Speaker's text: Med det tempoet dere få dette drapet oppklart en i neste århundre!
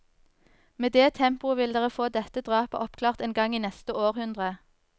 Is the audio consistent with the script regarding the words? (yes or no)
no